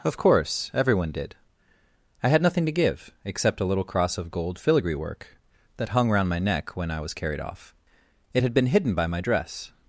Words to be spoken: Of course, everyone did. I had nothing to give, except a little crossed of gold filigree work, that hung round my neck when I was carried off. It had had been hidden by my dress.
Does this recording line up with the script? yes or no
no